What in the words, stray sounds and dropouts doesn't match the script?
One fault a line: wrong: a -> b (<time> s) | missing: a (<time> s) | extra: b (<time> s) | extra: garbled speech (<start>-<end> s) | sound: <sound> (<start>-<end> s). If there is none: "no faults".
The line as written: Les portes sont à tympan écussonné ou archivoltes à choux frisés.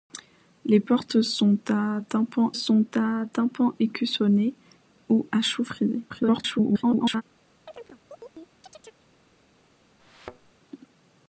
extra: sont à tympan (2.5 s)
missing: archivoltes (5.3 s)
extra: garbled speech (6.1-7.2 s)
sound: chirp (7.7-9.1 s)
sound: thud (10.0-10.5 s)